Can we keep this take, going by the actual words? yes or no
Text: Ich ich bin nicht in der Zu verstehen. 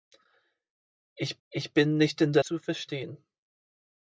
yes